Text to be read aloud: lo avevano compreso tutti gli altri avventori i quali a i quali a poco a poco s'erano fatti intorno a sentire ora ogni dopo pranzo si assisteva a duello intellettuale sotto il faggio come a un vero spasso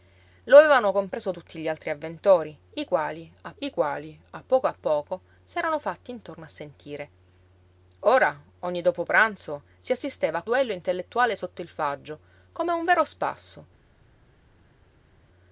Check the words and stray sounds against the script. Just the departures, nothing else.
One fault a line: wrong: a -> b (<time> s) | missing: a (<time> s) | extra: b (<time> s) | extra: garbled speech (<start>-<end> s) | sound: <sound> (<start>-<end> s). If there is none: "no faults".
no faults